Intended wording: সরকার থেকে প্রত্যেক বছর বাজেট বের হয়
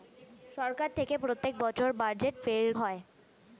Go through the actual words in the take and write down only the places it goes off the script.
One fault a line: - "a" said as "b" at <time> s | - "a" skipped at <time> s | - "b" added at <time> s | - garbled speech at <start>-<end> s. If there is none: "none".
none